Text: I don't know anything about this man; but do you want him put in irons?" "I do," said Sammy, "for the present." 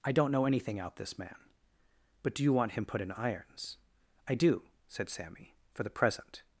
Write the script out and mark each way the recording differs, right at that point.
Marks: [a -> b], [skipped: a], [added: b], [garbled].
I don't know anything [about -> out] this man; but do you want him put in irons?" "I do," said Sammy, "for the present."